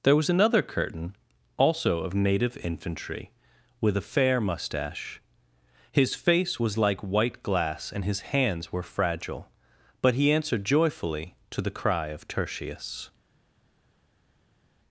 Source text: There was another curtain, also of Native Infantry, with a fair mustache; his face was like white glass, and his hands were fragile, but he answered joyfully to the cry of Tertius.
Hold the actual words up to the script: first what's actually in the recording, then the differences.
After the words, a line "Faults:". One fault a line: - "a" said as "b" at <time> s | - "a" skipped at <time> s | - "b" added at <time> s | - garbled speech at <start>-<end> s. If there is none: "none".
There was another curtain, also of Native Infantry, with a fair mustache; his face was like white glass, and his hands were fragile, but he answered joyfully to the cry of Tertius.
Faults:
none